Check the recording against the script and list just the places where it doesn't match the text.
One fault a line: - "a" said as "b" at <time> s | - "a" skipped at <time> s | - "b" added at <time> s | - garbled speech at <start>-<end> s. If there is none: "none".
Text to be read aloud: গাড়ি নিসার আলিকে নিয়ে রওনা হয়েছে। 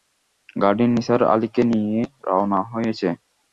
none